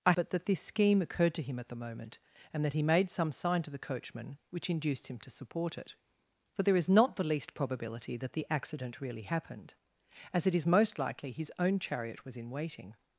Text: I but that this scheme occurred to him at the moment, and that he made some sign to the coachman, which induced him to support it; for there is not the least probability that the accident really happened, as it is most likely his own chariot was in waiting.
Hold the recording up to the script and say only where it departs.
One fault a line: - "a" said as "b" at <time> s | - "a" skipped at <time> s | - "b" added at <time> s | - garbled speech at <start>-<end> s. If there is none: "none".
none